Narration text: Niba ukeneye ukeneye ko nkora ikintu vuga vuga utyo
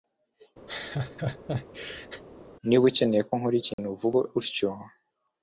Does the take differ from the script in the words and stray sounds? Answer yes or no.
yes